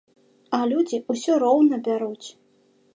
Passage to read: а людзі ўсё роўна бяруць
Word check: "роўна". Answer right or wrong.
right